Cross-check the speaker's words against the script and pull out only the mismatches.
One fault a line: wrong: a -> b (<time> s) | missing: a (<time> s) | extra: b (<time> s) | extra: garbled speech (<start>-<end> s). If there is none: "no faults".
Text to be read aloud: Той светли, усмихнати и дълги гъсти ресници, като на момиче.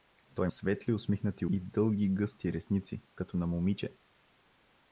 no faults